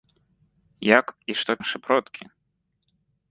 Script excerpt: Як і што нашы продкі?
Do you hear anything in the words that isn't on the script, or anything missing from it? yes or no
no